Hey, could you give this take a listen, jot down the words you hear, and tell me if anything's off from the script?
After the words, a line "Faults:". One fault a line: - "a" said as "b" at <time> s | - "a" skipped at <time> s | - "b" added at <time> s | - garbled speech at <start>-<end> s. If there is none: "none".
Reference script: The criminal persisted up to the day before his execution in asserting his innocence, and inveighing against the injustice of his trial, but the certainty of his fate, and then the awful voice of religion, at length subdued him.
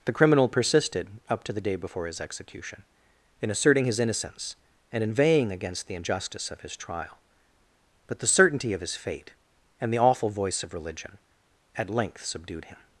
The criminal persisted up to the day before his execution in asserting his innocence, and inveighing against the injustice of his trial, but the certainty of his fate, and the awful voice of religion, at length subdued him.
Faults:
- "then" skipped at 9.9 s